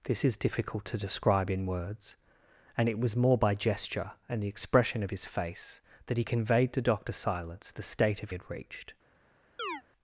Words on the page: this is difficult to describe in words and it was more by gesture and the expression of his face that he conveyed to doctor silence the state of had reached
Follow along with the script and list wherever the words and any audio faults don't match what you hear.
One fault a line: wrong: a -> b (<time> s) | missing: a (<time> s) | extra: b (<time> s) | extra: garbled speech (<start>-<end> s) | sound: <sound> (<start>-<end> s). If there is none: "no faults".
sound: chirp (9.6-9.8 s)